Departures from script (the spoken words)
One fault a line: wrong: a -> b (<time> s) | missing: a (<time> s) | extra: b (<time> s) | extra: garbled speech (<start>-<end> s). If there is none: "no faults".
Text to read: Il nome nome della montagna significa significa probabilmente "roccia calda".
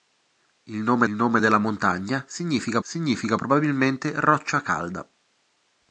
no faults